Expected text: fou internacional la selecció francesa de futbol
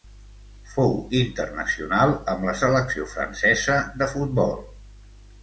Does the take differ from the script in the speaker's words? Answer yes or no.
yes